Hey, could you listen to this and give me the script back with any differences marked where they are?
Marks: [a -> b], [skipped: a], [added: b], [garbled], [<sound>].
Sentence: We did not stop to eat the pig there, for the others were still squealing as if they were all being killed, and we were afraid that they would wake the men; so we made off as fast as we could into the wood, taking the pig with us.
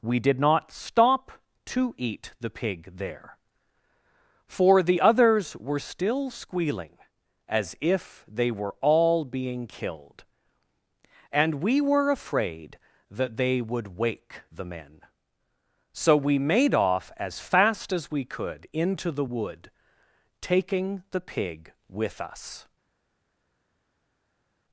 We did not stop to eat the pig there, for the others were still squealing as if they were all being killed, and we were afraid that they would wake the men; so we made off as fast as we could into the wood, taking the pig with us.